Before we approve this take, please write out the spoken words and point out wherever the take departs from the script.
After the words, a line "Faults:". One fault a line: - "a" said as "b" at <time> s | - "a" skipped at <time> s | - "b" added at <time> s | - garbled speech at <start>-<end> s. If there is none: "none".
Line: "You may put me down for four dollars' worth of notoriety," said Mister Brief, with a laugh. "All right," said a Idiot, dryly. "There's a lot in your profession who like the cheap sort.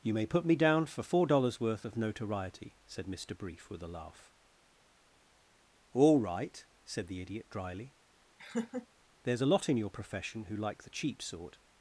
"You may put me down for four dollars' worth of notoriety," said Mister Brief, with a laugh. "All right," said the Idiot, dryly. "There's a lot in your profession who like the cheap sort.
Faults:
- "a" said as "the" at 7.1 s